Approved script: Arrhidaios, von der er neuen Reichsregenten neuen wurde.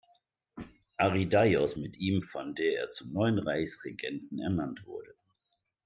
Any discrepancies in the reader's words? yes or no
yes